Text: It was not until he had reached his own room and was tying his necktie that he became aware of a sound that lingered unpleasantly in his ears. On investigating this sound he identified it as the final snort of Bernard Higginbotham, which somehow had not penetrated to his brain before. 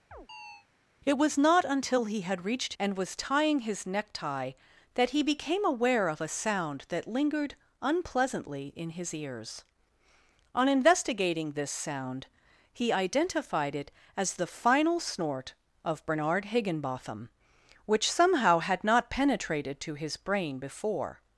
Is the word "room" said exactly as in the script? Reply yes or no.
no